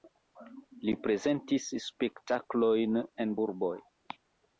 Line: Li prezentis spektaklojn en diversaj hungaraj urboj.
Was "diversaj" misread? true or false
true